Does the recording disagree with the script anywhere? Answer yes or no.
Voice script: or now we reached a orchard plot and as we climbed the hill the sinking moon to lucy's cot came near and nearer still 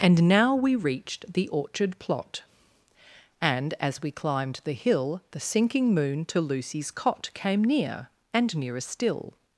yes